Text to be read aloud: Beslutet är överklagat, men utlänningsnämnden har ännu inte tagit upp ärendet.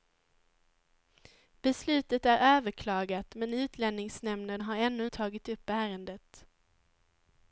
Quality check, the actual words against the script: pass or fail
fail